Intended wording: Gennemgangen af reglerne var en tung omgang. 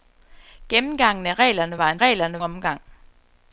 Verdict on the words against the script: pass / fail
fail